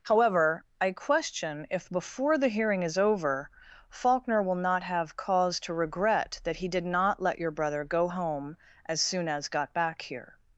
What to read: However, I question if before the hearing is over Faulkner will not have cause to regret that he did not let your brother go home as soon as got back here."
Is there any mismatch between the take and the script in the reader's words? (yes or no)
no